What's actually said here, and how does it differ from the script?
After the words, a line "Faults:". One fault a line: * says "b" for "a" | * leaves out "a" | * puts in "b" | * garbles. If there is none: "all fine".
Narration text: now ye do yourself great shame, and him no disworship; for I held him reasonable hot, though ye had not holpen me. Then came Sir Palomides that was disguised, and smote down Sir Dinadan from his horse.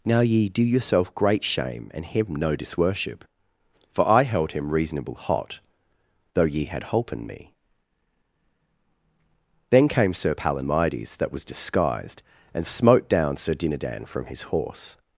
now ye do yourself great shame, and him no disworship; for I held him reasonable hot, though ye had holpen me. Then came Sir Palomides that was disguised, and smote down Sir Dinadan from his horse.
Faults:
* leaves out "not"